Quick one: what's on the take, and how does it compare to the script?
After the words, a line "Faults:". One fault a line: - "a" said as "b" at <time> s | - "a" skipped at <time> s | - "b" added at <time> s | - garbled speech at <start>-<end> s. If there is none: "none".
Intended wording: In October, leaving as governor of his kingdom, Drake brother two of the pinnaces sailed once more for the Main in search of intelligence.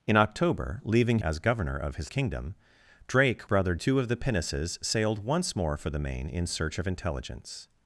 In October, leaving as governor of his kingdom, Drake brother two of the pinnaces sailed once more for the Main in search of intelligence.
Faults:
none